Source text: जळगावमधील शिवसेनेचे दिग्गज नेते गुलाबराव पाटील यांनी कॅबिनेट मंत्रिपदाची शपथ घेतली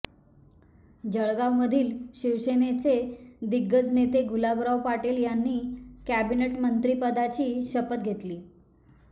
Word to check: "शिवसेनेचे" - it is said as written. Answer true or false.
true